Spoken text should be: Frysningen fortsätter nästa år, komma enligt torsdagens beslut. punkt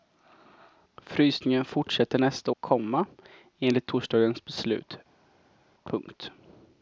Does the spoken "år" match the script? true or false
false